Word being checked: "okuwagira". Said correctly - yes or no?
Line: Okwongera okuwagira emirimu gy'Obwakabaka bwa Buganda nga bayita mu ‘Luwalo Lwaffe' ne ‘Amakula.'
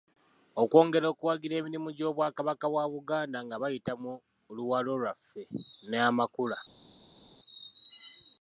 yes